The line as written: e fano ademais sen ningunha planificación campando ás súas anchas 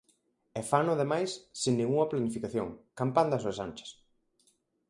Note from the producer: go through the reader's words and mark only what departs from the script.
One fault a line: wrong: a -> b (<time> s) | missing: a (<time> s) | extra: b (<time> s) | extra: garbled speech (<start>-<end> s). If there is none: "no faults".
no faults